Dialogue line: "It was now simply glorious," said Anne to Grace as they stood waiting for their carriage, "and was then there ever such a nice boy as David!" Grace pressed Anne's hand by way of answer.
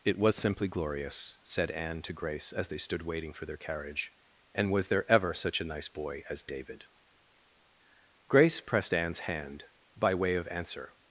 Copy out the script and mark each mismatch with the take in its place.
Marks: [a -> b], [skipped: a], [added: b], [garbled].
"It was [skipped: now] simply glorious," said Anne to Grace as they stood waiting for their carriage, "and was [skipped: then] there ever such a nice boy as David!" Grace pressed Anne's hand by way of answer.